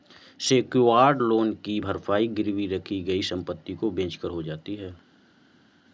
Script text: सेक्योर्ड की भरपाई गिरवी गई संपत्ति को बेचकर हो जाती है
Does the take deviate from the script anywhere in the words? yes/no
yes